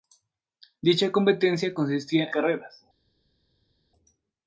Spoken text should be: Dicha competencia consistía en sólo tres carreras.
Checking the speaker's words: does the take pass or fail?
fail